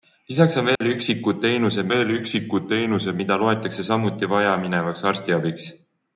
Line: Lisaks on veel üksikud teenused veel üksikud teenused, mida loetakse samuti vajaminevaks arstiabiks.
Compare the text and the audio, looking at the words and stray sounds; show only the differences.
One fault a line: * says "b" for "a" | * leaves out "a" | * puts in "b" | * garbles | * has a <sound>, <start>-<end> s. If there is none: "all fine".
* has a dropout, 0.8-0.8 s